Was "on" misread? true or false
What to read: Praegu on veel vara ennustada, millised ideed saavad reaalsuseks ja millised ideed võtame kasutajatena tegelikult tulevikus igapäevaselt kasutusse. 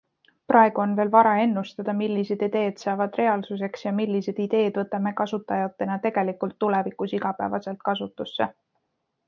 false